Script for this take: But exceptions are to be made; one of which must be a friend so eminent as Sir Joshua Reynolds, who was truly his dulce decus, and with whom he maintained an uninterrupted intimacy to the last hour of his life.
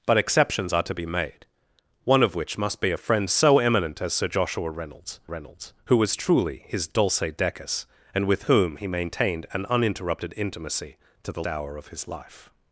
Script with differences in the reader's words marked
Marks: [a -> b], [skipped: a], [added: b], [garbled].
But exceptions are to be made; one of which must be a friend so eminent as Sir Joshua Reynolds, [added: Reynolds] who was truly his dulce decus, and with whom he maintained an uninterrupted intimacy to the [skipped: last] hour of his life.